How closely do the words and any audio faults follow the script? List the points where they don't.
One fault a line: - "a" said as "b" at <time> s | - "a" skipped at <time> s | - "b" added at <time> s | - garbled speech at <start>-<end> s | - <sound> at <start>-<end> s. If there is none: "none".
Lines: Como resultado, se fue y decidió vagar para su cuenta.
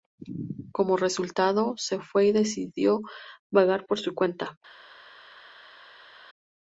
- "para" said as "por" at 3.9 s